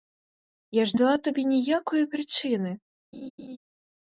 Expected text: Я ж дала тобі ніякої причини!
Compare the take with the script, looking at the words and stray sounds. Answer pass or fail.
fail